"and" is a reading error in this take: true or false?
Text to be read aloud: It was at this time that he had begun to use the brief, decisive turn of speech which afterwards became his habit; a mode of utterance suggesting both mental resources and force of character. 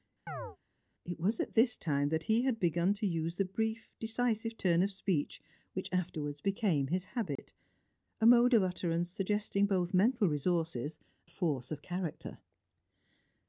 true